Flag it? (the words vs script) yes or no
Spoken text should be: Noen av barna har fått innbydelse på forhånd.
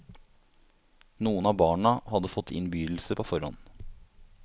yes